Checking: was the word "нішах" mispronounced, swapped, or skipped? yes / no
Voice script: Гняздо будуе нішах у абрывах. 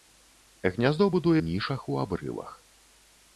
no